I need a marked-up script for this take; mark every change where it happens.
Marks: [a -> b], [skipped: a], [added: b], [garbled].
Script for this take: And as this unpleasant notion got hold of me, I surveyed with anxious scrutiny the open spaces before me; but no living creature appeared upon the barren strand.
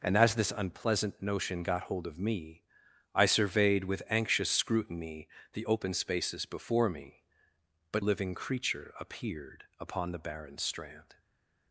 And as this unpleasant notion got hold of me, I surveyed with anxious scrutiny the open spaces before me; but [skipped: no] living creature appeared upon the barren strand.